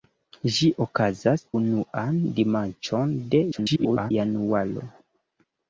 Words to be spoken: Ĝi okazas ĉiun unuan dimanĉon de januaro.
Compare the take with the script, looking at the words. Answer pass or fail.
fail